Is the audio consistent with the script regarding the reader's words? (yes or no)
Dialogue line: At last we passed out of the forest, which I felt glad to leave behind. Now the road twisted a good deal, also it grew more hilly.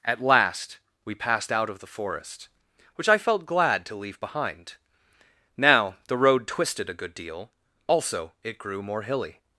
yes